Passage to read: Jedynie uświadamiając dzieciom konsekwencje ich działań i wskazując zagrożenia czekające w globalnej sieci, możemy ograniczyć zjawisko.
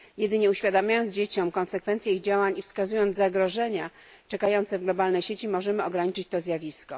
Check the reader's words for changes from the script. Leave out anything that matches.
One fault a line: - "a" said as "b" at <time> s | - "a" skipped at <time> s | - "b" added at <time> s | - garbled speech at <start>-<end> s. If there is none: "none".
- "to" added at 6.3 s